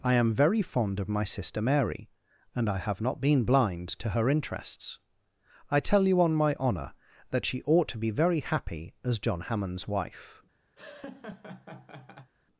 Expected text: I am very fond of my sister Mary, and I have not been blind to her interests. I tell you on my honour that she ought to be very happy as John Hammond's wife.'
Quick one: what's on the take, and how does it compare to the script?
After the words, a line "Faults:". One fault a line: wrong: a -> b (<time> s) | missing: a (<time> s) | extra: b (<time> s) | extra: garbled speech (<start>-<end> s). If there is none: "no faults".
I am very fond of my sister Mary, and I have not been blind to her interests. I tell you on my honour that she ought to be very happy as John Hammond's wife.'
Faults:
no faults